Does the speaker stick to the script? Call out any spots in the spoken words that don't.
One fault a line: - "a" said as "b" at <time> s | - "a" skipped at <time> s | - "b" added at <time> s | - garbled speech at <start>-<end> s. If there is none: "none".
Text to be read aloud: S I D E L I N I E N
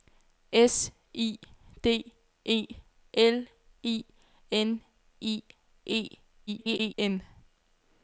- garbled speech at 6.5-6.9 s